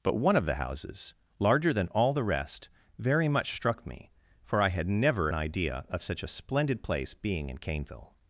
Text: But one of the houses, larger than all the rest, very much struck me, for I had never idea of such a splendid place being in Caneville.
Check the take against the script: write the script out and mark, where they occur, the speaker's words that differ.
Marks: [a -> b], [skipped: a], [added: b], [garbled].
But one of the houses, larger than all the rest, very much struck me, for I had never idea of such a splendid place being in Caneville.